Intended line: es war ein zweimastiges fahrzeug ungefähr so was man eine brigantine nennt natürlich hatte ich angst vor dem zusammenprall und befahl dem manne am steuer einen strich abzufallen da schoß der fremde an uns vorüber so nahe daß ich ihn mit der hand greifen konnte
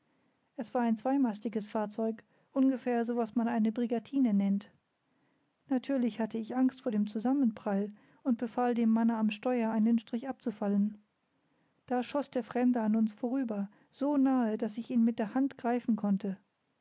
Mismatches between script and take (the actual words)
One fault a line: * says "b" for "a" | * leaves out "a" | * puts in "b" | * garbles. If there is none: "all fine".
all fine